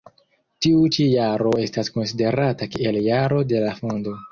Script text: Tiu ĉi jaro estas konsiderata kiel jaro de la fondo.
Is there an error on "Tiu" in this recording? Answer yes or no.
no